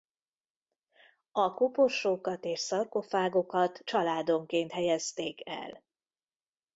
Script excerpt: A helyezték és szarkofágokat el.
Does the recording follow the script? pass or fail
fail